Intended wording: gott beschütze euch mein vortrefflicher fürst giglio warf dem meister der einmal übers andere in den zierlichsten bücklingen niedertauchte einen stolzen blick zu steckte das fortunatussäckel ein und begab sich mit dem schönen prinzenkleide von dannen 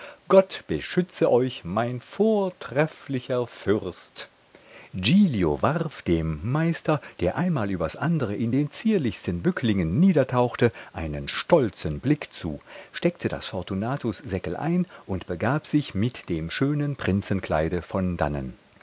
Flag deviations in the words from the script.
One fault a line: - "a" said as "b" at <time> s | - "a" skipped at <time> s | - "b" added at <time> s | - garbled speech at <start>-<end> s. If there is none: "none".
none